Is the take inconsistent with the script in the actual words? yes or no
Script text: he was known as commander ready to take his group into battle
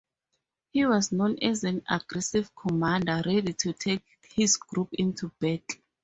yes